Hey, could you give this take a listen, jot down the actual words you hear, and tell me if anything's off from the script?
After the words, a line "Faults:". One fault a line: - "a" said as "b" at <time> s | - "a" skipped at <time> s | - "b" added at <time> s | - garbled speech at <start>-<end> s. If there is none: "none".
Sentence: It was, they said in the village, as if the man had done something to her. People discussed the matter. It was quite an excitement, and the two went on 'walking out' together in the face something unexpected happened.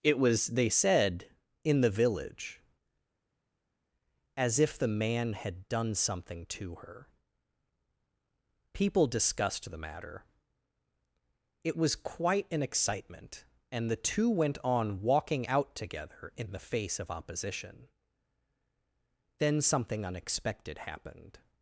It was, they said in the village, as if the man had done something to her. People discussed the matter. It was quite an excitement, and the two went on 'walking out' together in the face of opposition. Then something unexpected happened.
Faults:
- "of opposition Then" added at 17.0 s